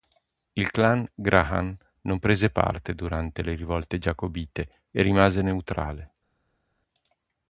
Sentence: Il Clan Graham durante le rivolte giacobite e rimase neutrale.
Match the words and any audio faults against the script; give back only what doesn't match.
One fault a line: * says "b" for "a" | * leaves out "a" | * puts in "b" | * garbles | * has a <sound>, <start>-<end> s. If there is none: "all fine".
* puts in "non prese parte"